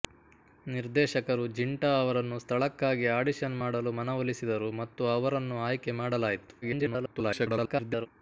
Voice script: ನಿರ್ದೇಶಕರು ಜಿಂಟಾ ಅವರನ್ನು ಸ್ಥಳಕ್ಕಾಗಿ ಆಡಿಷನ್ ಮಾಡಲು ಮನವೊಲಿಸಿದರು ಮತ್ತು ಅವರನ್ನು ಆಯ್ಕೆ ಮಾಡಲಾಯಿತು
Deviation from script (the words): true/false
true